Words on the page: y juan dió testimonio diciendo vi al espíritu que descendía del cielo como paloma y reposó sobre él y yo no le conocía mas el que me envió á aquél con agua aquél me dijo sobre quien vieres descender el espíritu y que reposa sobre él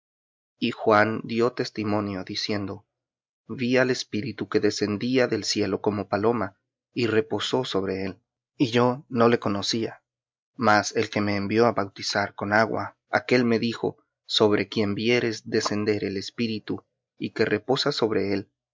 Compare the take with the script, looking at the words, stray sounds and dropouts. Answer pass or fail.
fail